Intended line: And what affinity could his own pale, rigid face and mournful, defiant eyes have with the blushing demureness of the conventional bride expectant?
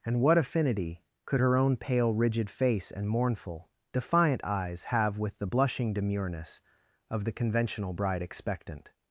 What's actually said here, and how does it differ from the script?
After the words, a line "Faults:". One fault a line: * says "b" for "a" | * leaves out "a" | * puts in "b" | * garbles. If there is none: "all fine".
And what affinity could her own pale, rigid face and mournful, defiant eyes have with the blushing demureness of the conventional bride expectant?
Faults:
* says "her" for "his"